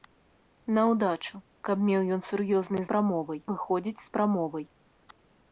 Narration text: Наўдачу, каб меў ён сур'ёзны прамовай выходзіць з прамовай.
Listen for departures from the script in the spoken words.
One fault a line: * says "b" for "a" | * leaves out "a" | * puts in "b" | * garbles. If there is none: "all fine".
all fine